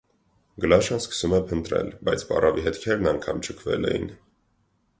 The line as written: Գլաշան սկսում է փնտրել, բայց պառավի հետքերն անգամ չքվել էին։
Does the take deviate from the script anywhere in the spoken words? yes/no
no